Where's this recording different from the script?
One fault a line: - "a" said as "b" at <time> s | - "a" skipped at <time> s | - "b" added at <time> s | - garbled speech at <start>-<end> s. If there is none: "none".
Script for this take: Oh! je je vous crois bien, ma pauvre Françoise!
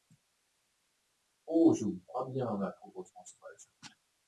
- "je" skipped at 1.9 s